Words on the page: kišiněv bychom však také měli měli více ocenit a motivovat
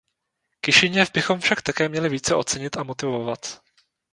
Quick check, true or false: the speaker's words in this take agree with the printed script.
false